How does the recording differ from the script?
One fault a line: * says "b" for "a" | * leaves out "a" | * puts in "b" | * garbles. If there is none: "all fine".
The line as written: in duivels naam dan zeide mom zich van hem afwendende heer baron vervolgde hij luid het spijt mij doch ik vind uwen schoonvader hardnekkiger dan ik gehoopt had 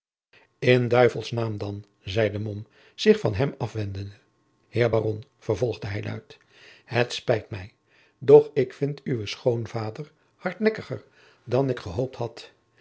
all fine